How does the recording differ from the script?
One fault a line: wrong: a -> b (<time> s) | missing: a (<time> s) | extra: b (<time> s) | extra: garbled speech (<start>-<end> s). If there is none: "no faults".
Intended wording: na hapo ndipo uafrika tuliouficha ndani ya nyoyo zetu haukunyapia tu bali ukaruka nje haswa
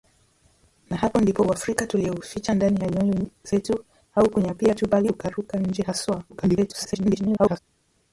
extra: garbled speech (6.3-7.6 s)